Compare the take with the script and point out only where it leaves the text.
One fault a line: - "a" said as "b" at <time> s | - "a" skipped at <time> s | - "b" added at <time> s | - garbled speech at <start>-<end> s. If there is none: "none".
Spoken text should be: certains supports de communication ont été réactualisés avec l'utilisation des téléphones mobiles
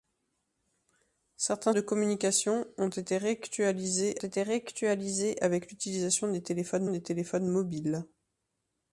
- "supports" skipped at 1.7 s
- "été réactualisés" added at 4.2 s
- "des téléphones" added at 6.9 s